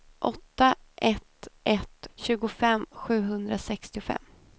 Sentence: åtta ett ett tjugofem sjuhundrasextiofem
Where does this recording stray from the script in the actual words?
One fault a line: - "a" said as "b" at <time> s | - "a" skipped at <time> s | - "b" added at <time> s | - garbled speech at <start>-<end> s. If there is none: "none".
none